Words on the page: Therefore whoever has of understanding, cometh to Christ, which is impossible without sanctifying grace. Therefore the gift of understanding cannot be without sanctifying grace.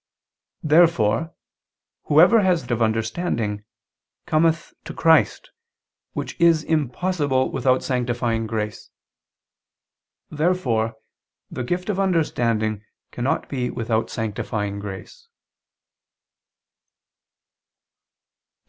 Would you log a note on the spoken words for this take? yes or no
no